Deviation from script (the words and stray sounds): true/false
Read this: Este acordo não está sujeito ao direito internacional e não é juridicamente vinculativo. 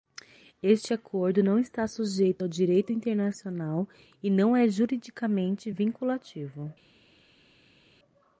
false